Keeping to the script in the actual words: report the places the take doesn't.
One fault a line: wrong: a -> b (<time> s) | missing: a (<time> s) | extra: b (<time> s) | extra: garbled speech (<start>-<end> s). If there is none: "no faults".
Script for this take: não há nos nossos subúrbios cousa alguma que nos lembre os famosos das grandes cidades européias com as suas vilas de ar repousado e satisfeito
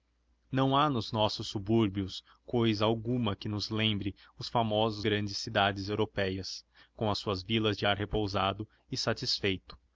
missing: das (5.0 s)